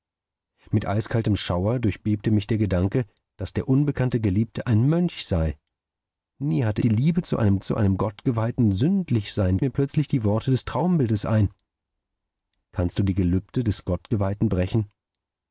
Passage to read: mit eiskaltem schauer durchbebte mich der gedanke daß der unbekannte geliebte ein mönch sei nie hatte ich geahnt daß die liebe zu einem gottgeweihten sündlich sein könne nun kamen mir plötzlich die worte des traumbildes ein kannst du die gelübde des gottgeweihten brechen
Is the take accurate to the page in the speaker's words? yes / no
no